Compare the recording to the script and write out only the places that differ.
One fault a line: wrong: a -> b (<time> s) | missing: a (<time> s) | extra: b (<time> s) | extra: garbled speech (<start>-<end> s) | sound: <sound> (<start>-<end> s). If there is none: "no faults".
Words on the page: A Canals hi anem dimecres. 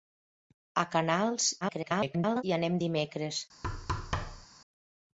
extra: garbled speech (1.6-2.4 s)
sound: thud (3.6-4.5 s)